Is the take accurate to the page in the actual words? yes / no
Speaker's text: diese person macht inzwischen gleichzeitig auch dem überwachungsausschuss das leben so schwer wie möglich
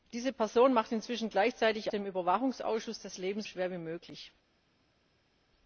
no